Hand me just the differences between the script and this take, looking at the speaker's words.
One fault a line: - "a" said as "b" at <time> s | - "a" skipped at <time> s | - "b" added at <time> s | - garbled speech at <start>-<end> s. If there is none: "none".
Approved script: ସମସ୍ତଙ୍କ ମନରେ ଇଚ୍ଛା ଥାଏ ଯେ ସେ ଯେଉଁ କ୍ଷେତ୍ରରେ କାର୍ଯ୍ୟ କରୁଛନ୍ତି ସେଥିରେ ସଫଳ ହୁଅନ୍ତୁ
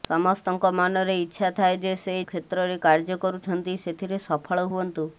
- "ଯେଉଁ" skipped at 2.1 s